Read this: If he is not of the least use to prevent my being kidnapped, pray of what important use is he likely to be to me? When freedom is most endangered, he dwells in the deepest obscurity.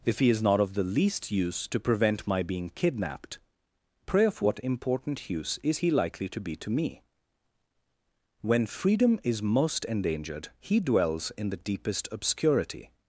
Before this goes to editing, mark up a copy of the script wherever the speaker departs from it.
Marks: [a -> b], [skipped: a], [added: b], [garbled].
If he is not of the least use to prevent my being kidnapped, pray of what important use is he likely to be to me? When freedom is most endangered, he dwells in the deepest obscurity.